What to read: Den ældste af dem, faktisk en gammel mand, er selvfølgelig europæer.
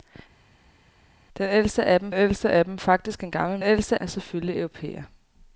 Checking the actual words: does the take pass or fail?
fail